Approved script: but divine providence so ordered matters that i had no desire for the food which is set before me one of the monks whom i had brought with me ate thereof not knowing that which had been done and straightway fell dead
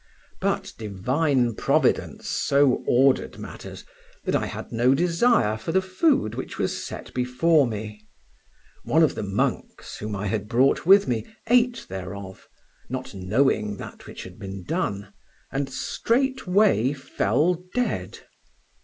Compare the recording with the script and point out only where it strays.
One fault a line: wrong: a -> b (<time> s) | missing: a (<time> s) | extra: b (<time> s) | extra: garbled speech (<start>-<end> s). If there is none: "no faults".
wrong: is -> was (6.6 s)